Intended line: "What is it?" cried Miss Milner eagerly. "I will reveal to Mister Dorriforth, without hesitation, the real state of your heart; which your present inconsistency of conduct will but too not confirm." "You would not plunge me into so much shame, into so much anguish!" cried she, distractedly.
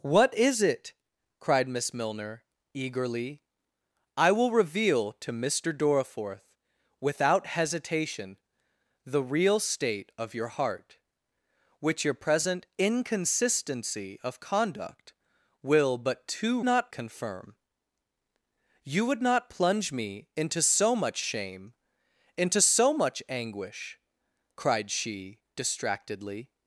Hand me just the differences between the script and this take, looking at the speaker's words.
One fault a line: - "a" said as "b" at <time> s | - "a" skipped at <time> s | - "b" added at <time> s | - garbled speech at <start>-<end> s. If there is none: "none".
none